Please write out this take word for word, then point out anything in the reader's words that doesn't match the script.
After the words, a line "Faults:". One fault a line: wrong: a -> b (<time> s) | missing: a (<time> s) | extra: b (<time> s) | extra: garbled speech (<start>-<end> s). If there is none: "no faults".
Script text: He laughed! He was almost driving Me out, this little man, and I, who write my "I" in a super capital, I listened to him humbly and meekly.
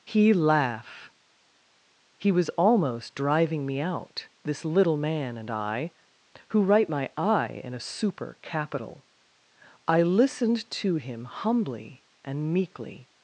He laugh! He was almost driving Me out, this little man, and I, who write my "I" in a super capital, I listened to him humbly and meekly.
Faults:
wrong: laughed -> laugh (0.3 s)